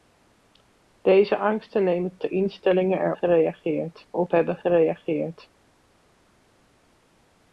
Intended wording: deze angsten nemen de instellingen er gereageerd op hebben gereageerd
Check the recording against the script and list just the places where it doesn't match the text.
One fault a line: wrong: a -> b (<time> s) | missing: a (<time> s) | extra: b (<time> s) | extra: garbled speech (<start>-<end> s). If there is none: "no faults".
no faults